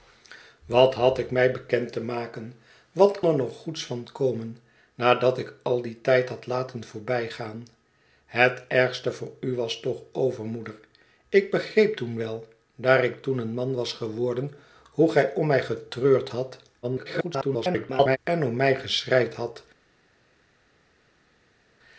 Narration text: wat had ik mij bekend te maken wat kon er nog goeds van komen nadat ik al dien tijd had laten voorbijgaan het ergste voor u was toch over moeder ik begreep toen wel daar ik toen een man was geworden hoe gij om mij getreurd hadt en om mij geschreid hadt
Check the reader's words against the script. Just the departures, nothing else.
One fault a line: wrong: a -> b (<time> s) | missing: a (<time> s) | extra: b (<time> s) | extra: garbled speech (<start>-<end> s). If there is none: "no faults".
missing: kon (3.2 s)
extra: garbled speech (16.8-18.2 s)